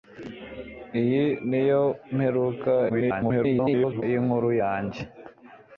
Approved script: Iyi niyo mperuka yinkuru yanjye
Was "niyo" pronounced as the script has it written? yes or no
yes